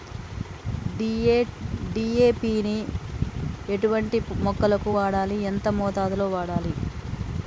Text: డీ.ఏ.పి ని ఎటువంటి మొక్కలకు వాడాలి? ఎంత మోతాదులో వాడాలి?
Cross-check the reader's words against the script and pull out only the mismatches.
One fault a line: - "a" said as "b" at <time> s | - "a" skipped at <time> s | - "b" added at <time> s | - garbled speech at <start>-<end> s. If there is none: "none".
none